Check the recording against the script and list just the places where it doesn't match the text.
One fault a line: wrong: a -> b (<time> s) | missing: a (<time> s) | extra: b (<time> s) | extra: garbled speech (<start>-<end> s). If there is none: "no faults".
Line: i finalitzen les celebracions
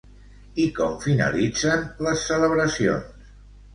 extra: com (0.8 s)